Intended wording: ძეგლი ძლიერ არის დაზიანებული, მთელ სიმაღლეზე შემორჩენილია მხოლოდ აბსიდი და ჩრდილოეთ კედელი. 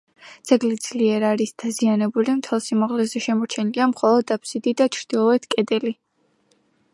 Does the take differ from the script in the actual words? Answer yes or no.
no